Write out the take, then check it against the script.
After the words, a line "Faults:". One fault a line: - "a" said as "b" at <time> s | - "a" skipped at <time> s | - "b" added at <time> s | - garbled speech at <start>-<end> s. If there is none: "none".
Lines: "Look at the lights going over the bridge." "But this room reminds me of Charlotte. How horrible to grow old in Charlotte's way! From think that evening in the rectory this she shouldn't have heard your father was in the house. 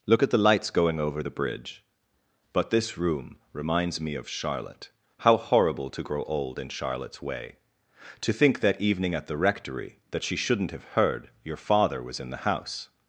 "Look at the lights going over the bridge." "But this room reminds me of Charlotte. How horrible to grow old in Charlotte's way! To think that evening at the rectory that she shouldn't have heard your father was in the house.
Faults:
- "From" said as "To" at 8.2 s
- "in" said as "at" at 9.1 s
- "this" said as "that" at 10.1 s